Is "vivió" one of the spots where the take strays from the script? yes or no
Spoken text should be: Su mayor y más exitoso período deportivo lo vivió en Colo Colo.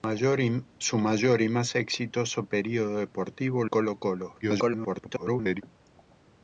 yes